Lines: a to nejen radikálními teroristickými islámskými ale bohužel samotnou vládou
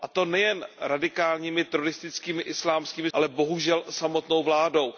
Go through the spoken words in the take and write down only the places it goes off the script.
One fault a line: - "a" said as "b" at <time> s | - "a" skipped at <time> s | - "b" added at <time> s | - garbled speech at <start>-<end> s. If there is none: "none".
none